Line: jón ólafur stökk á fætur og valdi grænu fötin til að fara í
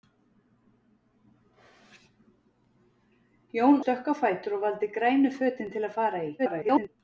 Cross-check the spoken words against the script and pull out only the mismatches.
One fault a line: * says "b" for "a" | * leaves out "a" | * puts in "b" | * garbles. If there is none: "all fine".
* leaves out "ólafur"
* garbles